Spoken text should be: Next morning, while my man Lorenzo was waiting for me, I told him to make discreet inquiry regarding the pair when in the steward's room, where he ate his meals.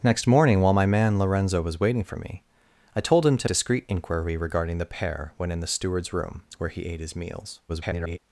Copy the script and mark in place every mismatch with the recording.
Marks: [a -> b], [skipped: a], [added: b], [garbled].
Next morning, while my man Lorenzo was waiting for me, I told him to [skipped: make] discreet inquiry regarding the pair when in the steward's room, where he ate his meals. [garbled]